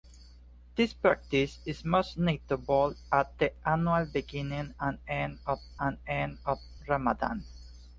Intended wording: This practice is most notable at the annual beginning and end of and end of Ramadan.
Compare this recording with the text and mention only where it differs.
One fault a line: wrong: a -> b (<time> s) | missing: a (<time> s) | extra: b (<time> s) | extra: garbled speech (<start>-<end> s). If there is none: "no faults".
no faults